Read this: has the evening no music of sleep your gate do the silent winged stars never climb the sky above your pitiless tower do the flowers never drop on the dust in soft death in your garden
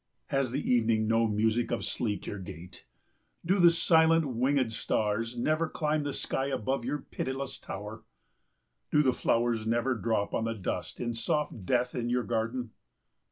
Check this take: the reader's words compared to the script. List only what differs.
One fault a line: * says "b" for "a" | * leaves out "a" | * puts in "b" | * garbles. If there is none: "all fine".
all fine